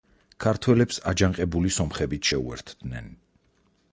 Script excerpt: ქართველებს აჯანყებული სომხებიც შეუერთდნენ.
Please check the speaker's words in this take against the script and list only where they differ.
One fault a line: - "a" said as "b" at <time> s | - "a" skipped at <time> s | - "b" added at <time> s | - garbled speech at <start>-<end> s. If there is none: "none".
none